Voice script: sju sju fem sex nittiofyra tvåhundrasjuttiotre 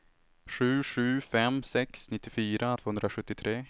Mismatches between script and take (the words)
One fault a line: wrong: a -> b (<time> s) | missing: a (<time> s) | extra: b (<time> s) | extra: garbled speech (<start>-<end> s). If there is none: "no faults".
no faults